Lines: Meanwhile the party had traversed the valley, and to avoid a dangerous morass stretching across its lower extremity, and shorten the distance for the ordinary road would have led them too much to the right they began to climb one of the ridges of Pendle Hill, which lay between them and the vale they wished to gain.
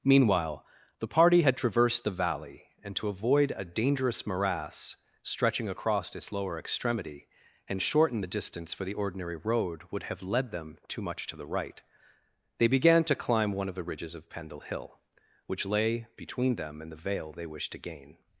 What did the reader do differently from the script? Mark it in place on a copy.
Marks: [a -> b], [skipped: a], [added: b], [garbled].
Meanwhile the party had traversed the valley, and to avoid a dangerous morass stretching across its lower extremity, and shorten the distance for the ordinary road would have led them too much to the right they began to climb one of the ridges of Pendle Hill, which lay between them and the vale they wished to gain.